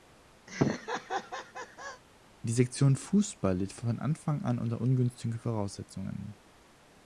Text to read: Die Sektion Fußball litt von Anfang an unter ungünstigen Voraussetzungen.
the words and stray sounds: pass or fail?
fail